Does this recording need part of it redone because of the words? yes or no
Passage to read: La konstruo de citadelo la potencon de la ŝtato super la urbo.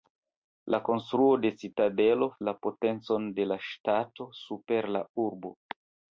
no